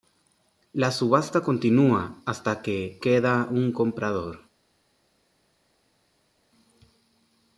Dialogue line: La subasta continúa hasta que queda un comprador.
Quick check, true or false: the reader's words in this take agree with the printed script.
true